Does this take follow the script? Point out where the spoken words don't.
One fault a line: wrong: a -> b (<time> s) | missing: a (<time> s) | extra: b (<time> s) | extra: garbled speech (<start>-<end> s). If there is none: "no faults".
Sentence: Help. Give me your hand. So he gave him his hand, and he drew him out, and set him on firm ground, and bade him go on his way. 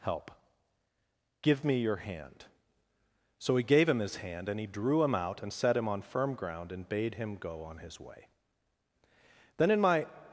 extra: Then in my (9.6 s)